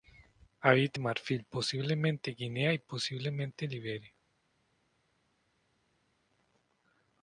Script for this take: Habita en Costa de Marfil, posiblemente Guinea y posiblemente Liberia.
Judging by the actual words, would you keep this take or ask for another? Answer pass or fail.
fail